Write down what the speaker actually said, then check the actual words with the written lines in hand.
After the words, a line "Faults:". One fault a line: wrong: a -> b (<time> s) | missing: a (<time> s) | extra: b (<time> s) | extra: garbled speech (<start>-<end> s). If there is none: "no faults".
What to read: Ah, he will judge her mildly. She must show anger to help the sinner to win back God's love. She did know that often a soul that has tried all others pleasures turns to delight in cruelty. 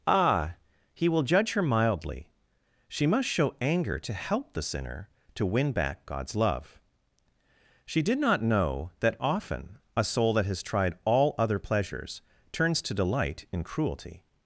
Ah, he will judge her mildly. She must show anger to help the sinner to win back God's love. She did not know that often a soul that has tried all other pleasures turns to delight in cruelty.
Faults:
extra: not (8.2 s)
wrong: others -> other (11.4 s)